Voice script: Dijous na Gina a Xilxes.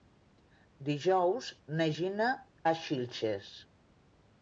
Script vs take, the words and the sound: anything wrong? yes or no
no